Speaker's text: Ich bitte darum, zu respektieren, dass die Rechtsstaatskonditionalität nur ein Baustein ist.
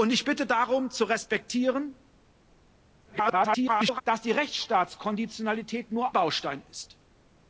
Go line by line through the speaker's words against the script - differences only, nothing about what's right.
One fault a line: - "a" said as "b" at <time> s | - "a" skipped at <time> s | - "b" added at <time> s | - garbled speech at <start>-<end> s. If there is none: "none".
- garbled speech at 3.0-4.0 s
- "ein" skipped at 6.1 s